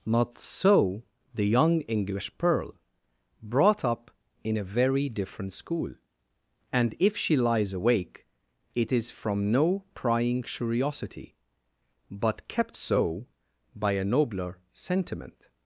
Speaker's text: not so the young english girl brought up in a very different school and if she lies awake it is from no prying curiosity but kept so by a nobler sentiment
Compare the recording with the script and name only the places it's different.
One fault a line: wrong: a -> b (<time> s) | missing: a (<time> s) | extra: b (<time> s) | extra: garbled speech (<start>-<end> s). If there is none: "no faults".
wrong: girl -> pearl (2.4 s)